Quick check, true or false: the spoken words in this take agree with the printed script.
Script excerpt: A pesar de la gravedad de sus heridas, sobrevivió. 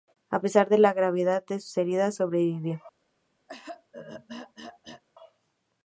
true